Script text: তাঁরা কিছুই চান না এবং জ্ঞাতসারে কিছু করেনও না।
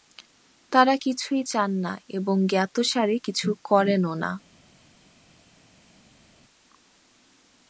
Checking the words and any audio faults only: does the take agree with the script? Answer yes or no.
yes